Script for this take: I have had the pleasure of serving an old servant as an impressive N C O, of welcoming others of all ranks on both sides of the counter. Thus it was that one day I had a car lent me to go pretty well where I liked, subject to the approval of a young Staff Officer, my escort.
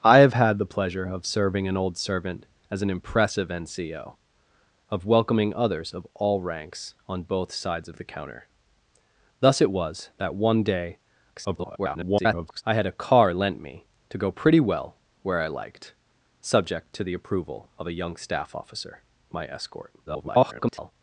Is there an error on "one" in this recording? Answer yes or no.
no